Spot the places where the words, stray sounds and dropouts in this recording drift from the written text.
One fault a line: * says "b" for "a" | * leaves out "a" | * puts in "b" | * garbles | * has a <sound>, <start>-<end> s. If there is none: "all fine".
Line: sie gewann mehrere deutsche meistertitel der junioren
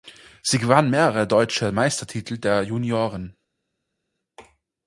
all fine